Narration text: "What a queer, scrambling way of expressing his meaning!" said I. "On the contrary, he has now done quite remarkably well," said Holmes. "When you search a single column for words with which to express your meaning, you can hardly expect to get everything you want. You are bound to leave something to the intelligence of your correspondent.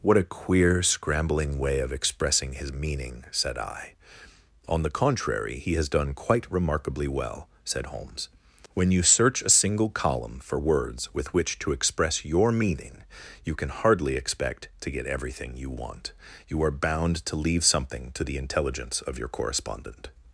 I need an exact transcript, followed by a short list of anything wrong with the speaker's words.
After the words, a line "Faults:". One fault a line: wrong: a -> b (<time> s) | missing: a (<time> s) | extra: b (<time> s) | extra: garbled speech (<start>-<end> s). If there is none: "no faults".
"What a queer, scrambling way of expressing his meaning!" said I. "On the contrary, he has done quite remarkably well," said Holmes. "When you search a single column for words with which to express your meaning, you can hardly expect to get everything you want. You are bound to leave something to the intelligence of your correspondent.
Faults:
missing: now (5.9 s)